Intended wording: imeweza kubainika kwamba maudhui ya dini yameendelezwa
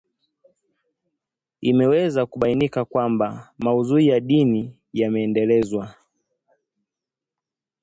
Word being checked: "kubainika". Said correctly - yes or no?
yes